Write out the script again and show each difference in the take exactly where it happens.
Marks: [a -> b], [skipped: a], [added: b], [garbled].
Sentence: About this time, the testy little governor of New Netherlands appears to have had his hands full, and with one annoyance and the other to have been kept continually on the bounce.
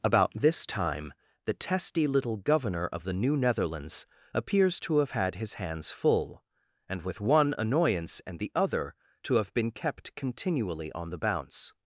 About this time, the testy little governor of [added: the] New Netherlands appears to have had his hands full, and with one annoyance and the other to have been kept continually on the bounce.